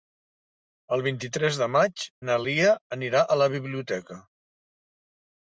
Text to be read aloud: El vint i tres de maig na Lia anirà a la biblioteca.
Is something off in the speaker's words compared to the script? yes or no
no